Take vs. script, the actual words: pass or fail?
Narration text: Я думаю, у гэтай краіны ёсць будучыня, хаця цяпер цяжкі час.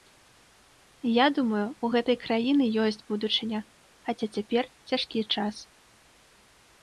pass